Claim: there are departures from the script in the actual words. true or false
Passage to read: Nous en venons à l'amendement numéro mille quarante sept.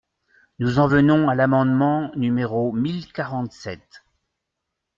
false